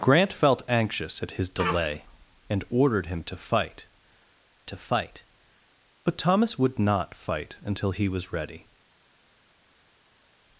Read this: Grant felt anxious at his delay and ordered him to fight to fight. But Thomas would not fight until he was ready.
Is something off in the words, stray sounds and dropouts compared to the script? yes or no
no